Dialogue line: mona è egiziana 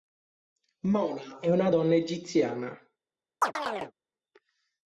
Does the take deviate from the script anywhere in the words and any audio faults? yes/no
yes